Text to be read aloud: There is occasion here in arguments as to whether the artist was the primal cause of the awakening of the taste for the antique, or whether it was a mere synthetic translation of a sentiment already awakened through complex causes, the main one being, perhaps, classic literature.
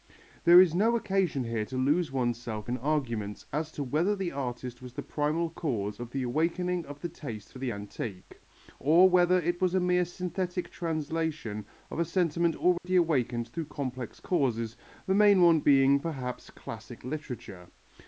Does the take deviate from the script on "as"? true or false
false